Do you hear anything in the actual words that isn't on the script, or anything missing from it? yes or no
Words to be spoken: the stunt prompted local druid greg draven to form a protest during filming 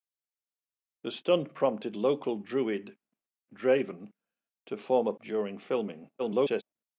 yes